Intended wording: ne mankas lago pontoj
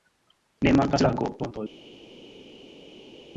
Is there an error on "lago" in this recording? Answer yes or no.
no